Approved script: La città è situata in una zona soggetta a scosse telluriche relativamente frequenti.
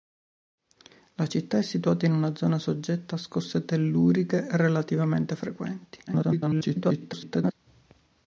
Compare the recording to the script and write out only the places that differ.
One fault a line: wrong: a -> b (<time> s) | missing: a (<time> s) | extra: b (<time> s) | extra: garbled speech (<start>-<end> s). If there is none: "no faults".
extra: garbled speech (6.1-7.5 s)